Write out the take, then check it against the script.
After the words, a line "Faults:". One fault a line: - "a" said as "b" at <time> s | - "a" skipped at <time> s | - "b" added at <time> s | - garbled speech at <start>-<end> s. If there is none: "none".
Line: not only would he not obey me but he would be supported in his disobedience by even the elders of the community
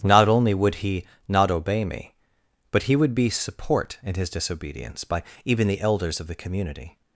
not only would he not obey me but he would be support in his disobedience by even the elders of the community
Faults:
- "supported" said as "support" at 3.3 s